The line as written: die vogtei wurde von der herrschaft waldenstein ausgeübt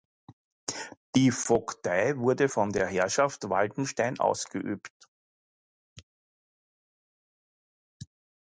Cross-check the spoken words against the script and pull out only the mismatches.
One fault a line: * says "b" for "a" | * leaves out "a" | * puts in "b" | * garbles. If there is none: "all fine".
all fine